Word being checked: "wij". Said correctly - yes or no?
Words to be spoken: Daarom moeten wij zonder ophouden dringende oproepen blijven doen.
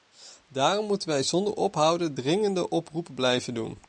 yes